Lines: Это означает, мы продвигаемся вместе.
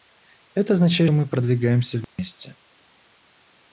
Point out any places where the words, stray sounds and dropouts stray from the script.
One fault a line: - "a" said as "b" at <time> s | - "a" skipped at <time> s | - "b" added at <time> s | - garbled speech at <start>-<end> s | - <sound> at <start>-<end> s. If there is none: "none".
- dropout at 2.0-2.2 s